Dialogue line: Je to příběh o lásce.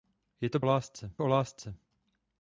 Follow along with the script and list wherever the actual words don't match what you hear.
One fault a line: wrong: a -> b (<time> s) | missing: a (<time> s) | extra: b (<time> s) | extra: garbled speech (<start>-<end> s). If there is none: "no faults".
wrong: příběh -> lásce (0.6 s)